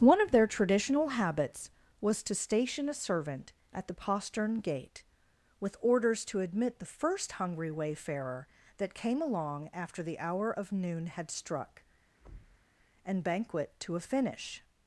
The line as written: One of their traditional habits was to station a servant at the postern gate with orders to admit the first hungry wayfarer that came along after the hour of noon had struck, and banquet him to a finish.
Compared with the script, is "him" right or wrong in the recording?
wrong